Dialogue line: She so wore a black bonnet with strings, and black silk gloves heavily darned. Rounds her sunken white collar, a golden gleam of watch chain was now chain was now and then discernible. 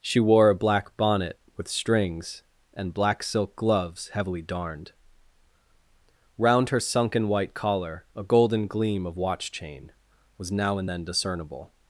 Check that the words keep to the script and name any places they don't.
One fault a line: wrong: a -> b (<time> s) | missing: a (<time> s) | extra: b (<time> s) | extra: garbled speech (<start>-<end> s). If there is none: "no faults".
missing: so (0.2 s)
wrong: Rounds -> Round (6.4 s)
missing: chain was now (10.8 s)